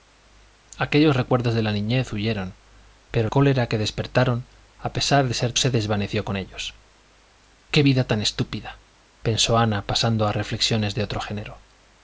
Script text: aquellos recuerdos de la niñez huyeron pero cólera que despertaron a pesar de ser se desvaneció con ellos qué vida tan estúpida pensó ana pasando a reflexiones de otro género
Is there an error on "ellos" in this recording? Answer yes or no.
no